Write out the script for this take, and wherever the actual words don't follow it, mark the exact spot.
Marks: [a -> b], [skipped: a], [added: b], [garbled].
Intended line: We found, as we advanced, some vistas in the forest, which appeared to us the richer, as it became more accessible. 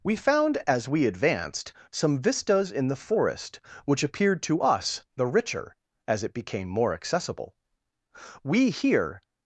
We found, as we advanced, some vistas in the forest, which appeared to us the richer, as it became more accessible. [added: We here]